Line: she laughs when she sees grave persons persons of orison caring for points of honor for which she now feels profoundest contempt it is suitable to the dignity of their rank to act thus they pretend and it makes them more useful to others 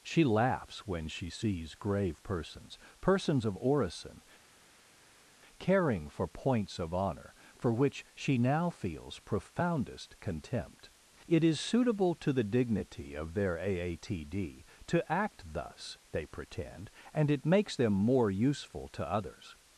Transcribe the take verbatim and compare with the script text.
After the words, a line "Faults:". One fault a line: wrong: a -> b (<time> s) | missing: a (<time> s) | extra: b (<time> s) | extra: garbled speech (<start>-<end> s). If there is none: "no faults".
she laughs when she sees grave persons persons of orison caring for points of honor for which she now feels profoundest contempt it is suitable to the dignity of their aatd to act thus they pretend and it makes them more useful to others
Faults:
wrong: rank -> aatd (13.6 s)